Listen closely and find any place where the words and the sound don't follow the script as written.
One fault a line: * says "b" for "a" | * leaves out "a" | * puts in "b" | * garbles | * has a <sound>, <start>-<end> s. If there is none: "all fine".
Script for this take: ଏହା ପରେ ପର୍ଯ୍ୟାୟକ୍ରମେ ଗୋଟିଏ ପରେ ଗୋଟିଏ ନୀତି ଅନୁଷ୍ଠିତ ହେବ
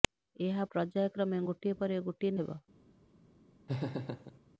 * leaves out "ପରେ"
* leaves out "ନୀତି ଅନୁଷ୍ଠିତ"
* has a laugh, 3.7-4.4 s